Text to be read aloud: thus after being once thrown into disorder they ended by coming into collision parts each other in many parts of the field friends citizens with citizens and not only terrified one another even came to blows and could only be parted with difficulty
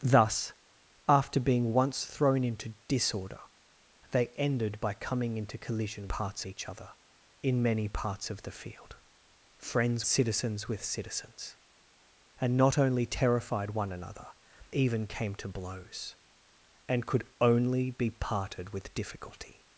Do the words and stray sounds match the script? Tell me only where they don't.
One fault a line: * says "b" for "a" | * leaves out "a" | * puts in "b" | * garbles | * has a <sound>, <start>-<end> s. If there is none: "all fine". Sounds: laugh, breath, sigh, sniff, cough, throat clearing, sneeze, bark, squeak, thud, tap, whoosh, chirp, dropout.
all fine